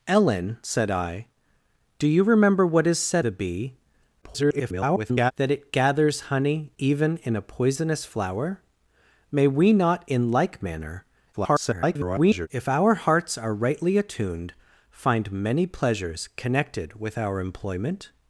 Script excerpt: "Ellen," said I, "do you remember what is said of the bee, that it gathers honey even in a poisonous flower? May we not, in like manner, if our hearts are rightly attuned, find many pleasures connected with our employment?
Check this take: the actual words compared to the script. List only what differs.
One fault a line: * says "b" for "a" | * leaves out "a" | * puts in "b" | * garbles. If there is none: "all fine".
* leaves out "of"
* garbles
* garbles